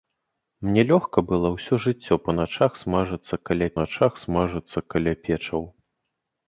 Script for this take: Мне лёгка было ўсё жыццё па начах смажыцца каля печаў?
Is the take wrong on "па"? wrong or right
right